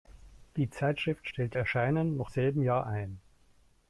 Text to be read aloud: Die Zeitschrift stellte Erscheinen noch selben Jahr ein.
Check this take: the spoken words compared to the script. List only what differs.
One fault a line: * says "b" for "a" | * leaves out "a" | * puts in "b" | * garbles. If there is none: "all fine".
all fine